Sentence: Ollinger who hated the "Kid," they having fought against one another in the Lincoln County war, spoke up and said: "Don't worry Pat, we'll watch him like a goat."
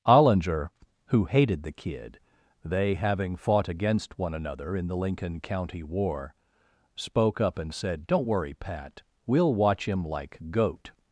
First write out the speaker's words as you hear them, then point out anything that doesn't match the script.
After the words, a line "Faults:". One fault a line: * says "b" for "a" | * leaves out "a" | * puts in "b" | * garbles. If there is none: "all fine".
Ollinger who hated the "Kid," they having fought against one another in the Lincoln County war, spoke up and said: "Don't worry Pat, we'll watch him like goat."
Faults:
* leaves out "a"